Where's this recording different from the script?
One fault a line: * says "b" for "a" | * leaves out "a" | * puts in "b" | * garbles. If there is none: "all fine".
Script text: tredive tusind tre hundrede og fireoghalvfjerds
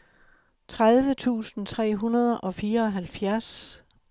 all fine